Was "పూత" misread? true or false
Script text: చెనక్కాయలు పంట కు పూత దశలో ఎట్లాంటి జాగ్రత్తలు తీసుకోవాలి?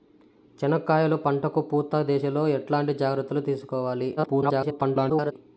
false